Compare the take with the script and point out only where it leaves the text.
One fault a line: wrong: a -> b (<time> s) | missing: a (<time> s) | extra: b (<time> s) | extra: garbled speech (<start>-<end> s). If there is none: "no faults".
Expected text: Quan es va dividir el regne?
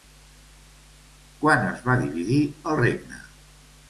no faults